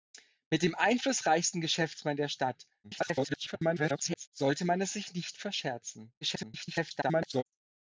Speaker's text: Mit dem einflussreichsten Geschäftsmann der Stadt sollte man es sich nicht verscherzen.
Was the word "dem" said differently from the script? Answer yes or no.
no